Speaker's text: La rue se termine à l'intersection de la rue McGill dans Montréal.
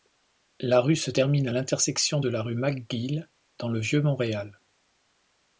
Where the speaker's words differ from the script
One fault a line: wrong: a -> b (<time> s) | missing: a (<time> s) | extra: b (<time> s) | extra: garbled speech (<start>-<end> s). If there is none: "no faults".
extra: le Vieux (3.7 s)